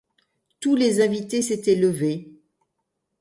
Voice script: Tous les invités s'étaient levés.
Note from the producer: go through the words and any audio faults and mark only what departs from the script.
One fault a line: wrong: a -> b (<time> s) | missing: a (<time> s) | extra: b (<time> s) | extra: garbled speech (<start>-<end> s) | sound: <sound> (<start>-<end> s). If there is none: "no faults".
no faults